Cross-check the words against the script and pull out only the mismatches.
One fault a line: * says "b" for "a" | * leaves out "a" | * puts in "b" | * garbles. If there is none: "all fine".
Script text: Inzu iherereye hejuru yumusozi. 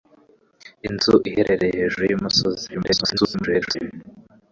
* garbles